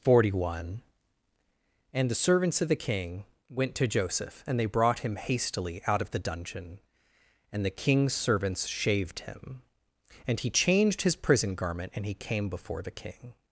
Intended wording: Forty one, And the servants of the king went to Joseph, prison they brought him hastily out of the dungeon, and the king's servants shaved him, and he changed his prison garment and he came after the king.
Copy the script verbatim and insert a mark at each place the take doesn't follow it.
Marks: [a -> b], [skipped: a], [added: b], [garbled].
Forty one, And the servants of the king went to Joseph, [prison -> and] they brought him hastily out of the dungeon, and the king's servants shaved him, and he changed his prison garment and he came [after -> before] the king.